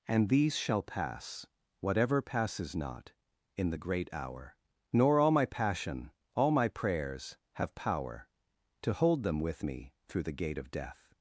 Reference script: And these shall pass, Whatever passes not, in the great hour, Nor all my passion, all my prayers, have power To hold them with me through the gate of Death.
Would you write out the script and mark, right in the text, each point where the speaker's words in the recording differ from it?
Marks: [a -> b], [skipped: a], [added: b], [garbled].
And these shall pass, Whatever passes not, in the great hour, Nor all my passion, all my prayers, have power To hold them with me through the gate of Death.